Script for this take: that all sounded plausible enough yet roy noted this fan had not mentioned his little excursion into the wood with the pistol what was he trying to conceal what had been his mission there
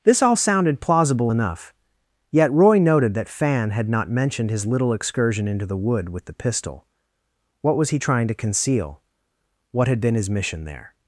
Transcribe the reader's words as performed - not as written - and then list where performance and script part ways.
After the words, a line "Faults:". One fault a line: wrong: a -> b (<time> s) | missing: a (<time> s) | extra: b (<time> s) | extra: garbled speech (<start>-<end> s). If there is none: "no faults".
this all sounded plausible enough yet roy noted that fan had not mentioned his little excursion into the wood with the pistol what was he trying to conceal what had been his mission there
Faults:
wrong: that -> this (0.0 s)
wrong: this -> that (3.1 s)